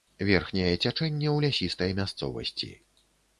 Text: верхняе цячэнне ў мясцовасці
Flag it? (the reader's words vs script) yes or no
yes